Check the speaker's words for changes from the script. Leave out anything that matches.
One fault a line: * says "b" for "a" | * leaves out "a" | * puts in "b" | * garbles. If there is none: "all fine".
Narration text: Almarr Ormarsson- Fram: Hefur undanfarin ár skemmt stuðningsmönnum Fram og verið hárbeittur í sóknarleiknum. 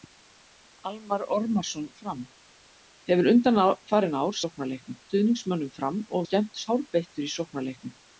* says "sóknarleiknum" for "skemmt"
* says "skemmt" for "verið"